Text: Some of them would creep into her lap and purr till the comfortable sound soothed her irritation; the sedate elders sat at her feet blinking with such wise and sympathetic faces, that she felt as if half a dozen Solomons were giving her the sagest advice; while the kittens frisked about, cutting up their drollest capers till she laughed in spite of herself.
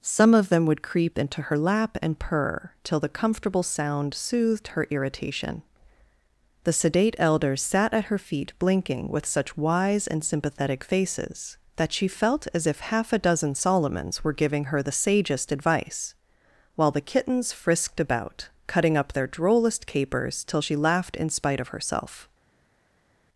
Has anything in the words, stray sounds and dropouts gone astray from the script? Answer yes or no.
no